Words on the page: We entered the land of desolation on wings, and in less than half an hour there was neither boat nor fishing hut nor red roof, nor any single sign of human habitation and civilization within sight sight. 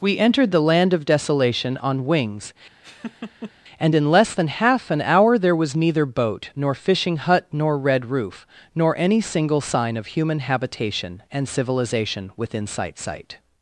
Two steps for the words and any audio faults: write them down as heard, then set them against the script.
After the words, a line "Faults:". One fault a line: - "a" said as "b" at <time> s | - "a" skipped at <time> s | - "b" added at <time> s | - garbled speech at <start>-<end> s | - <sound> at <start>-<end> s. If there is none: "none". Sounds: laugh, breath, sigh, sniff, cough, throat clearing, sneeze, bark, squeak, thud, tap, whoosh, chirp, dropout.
We entered the land of desolation on wings, and in less than half an hour there was neither boat nor fishing hut nor red roof, nor any single sign of human habitation and civilization within sight sight.
Faults:
- laugh at 2.8-3.5 s